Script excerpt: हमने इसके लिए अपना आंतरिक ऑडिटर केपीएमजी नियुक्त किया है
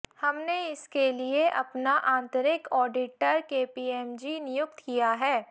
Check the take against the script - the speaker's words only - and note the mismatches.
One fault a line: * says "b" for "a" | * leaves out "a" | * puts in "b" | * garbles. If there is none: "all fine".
all fine